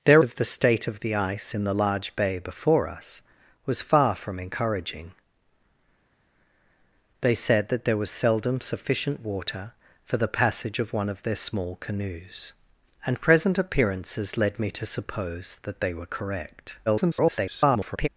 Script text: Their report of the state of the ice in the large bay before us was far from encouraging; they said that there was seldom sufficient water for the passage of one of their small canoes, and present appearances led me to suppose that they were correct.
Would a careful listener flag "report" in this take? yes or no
yes